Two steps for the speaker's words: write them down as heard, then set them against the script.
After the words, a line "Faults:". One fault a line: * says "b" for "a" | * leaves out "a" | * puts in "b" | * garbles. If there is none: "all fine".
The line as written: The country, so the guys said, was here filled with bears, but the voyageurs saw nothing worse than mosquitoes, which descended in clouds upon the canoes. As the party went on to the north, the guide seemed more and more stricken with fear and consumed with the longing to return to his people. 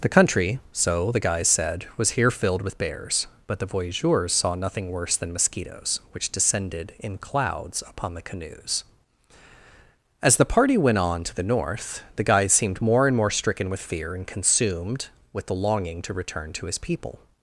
The country, so the guys said, was here filled with bears, but the voyageurs saw nothing worse than mosquitoes, which descended in clouds upon the canoes. As the party went on to the north, the guide seemed more and more stricken with fear and consumed with the longing to return to his people.
Faults:
all fine